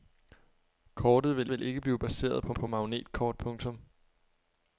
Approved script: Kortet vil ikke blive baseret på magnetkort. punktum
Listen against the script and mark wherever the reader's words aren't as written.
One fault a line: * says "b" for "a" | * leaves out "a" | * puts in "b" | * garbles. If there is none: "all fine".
* puts in "vil"
* puts in "på"